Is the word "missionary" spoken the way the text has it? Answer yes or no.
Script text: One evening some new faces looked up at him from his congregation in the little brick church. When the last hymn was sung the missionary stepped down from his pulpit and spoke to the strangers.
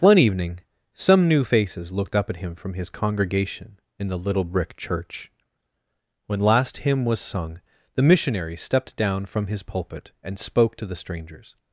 yes